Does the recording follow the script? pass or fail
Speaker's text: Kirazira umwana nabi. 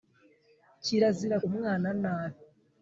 pass